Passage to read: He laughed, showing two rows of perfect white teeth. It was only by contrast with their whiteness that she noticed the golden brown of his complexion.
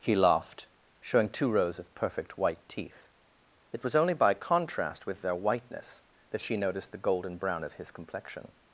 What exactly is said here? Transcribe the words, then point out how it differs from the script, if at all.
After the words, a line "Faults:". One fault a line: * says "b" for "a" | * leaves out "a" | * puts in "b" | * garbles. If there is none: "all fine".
He laughed, showing two rows of perfect white teeth. It was only by contrast with their whiteness that she noticed the golden brown of his complexion.
Faults:
all fine